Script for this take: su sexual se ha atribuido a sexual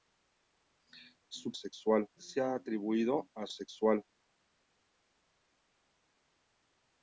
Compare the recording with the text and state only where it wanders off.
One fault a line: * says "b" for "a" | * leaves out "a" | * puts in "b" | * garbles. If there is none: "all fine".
all fine